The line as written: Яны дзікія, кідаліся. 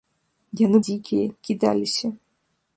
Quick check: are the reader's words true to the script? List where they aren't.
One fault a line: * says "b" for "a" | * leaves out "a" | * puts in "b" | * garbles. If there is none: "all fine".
all fine